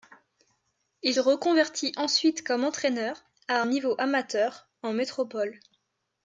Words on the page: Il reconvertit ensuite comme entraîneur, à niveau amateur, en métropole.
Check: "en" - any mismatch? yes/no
no